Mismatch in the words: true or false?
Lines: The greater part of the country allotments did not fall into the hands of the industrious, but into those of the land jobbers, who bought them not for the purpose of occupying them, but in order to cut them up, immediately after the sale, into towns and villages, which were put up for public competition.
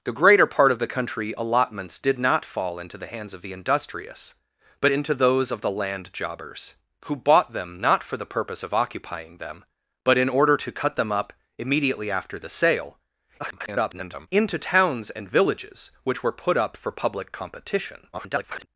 true